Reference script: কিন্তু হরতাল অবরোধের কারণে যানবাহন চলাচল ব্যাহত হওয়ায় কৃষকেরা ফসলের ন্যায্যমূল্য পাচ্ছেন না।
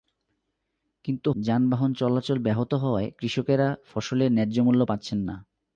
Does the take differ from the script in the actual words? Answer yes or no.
yes